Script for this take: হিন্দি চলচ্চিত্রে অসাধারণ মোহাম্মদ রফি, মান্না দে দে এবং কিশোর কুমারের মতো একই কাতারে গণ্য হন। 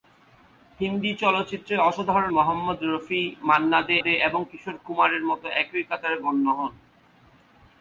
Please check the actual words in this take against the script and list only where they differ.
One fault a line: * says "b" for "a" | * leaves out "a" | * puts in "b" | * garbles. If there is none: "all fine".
all fine